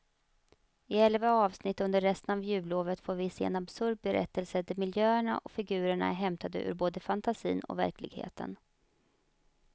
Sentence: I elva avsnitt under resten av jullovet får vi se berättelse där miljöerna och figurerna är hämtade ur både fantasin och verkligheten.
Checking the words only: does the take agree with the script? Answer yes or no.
no